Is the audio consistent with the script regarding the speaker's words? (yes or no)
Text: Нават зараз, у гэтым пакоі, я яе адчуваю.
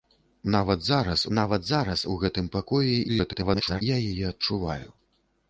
no